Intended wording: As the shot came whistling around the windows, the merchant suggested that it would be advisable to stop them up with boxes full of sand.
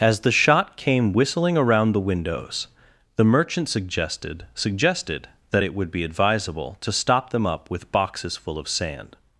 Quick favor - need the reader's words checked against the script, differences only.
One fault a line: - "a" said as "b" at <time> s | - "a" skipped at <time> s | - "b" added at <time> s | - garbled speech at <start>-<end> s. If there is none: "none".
- "suggested" added at 4.5 s